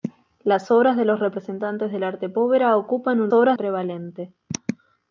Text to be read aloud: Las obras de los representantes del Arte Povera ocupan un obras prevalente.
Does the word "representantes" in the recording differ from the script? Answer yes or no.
no